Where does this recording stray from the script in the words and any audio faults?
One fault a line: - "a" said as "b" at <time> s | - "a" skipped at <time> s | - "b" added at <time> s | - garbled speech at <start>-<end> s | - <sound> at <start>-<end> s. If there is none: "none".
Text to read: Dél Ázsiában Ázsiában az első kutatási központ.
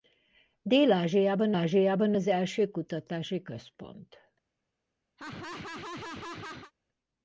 - laugh at 5.2-6.7 s